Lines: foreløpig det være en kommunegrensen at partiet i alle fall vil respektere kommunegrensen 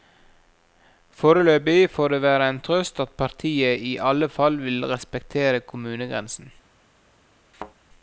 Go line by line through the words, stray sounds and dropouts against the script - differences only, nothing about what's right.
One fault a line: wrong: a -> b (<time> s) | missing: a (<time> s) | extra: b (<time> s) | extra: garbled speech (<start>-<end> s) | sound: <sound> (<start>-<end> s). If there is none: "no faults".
extra: får (1.9 s)
wrong: kommunegrensen -> trøst (2.6 s)
sound: thud (7.5-7.7 s)